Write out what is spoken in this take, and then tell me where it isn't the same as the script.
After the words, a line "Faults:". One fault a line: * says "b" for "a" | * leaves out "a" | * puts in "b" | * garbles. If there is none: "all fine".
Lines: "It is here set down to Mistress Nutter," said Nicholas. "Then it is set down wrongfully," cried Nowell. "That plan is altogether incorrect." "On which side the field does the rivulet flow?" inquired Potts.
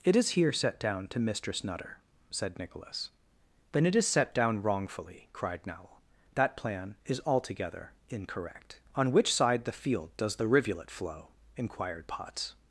"It is here set down to Mistress Nutter," said Nicholas. "Then it is set down wrongfully," cried Nowell. "That plan is altogether incorrect." "On which side the field does the rivulet flow?" inquired Potts.
Faults:
all fine